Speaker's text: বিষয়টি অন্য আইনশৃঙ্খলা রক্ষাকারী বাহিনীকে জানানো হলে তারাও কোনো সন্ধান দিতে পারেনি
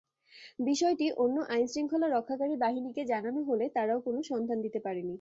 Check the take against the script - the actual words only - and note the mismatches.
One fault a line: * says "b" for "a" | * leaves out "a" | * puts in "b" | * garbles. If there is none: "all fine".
all fine